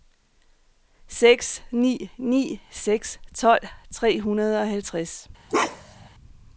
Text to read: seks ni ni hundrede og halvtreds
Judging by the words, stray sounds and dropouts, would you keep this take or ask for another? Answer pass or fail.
fail